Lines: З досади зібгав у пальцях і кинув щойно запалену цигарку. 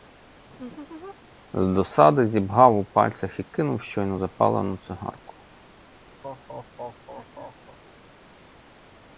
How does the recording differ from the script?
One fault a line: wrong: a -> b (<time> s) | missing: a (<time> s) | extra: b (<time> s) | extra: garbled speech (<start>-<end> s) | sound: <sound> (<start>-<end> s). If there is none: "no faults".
sound: laugh (0.5-1.2 s)
sound: laugh (6.2-7.8 s)